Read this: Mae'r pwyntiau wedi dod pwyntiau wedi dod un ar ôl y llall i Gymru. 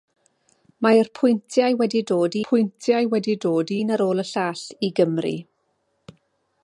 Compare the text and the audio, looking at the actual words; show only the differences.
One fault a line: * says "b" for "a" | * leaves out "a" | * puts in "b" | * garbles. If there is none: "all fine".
all fine